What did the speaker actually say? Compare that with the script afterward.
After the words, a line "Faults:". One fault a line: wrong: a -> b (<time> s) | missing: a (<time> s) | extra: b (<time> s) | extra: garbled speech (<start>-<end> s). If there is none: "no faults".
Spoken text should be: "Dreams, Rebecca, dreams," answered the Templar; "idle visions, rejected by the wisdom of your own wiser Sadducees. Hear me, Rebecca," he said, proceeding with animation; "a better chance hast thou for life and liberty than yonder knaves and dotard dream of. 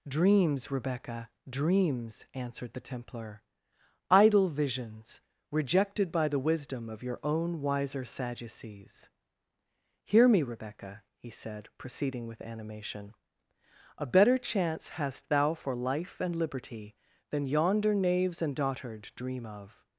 "Dreams, Rebecca, dreams," answered the Templar; "idle visions, rejected by the wisdom of your own wiser Sadducees. Hear me, Rebecca," he said, proceeding with animation; "a better chance hast thou for life and liberty than yonder knaves and dotard dream of.
Faults:
no faults